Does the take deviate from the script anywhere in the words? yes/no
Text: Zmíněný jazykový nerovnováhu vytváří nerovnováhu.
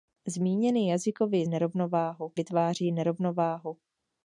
no